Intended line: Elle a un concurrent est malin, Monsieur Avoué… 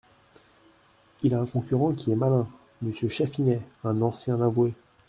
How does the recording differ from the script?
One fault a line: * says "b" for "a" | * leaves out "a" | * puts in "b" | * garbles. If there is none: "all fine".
* says "Il" for "Elle"
* puts in "qui"
* puts in "Chatfinet un ancien"